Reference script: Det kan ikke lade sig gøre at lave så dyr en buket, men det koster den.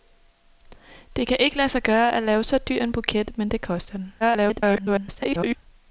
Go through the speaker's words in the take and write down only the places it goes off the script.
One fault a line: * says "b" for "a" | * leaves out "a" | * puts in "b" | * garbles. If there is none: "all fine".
* garbles